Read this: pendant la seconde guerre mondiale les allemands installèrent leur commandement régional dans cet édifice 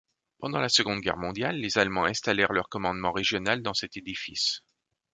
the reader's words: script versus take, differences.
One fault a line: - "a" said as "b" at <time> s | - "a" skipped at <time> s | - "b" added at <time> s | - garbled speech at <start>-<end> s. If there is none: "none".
none